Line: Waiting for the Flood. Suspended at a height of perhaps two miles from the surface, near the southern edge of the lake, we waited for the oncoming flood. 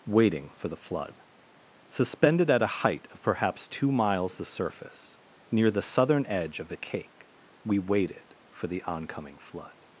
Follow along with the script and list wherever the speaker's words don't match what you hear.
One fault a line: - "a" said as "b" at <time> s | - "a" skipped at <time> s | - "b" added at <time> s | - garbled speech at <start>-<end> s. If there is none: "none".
- "from" skipped at 4.4 s
- "lake" said as "cake" at 6.8 s